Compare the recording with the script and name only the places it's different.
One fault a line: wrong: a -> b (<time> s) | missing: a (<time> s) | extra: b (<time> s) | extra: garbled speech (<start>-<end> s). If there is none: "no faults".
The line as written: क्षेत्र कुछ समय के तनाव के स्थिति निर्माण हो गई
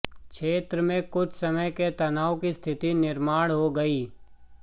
extra: में (0.8 s)
wrong: के -> की (2.4 s)